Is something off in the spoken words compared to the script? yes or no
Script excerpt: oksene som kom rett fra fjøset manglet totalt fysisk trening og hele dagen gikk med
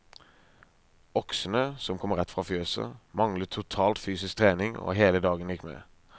no